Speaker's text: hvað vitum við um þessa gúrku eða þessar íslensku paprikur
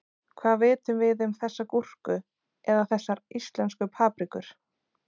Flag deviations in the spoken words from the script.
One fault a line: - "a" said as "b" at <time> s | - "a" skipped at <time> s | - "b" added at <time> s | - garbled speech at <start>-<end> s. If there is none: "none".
none